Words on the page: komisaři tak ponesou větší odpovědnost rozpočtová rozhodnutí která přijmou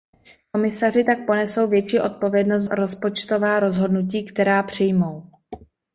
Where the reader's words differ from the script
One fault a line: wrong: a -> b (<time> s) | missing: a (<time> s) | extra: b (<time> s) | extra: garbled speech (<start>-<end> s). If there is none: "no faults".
no faults